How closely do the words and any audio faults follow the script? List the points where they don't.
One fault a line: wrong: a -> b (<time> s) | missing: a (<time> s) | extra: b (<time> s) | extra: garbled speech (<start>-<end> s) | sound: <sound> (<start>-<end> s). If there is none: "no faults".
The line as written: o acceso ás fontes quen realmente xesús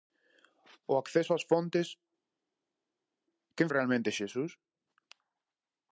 no faults